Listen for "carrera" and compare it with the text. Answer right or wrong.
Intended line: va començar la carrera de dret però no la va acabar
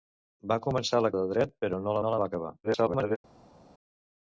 wrong